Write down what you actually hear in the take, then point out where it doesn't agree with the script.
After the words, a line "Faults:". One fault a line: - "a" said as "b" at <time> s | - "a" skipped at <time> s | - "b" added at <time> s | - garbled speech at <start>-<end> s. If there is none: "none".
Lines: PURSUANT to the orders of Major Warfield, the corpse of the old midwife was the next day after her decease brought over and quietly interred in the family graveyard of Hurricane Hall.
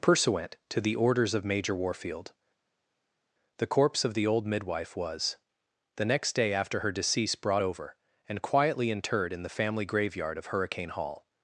PURSUANT to the orders of Major Warfield, the corpse of the old midwife was the next day after her decease brought over and quietly interred in the family graveyard of Hurricane Hall.
Faults:
none